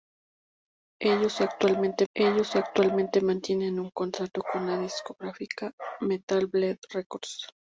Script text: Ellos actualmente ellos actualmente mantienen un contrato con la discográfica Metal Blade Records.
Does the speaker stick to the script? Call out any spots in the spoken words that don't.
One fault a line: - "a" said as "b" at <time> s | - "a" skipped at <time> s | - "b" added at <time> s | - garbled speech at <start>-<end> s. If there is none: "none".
none